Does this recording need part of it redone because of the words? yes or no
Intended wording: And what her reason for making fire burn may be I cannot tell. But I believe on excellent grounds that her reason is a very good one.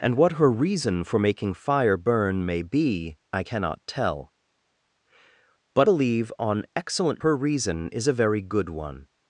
yes